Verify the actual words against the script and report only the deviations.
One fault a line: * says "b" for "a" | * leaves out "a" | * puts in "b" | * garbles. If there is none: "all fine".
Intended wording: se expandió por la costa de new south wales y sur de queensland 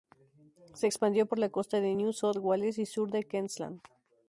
all fine